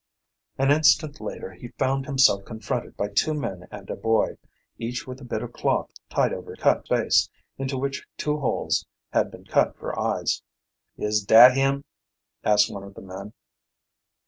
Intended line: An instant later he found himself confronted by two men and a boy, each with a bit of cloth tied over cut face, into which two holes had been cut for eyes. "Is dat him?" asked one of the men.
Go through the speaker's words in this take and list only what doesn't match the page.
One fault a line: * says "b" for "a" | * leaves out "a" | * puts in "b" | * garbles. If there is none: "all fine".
all fine